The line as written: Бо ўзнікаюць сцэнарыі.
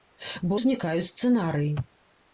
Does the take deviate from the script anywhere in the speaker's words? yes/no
no